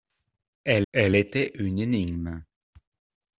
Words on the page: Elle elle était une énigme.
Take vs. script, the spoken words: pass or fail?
pass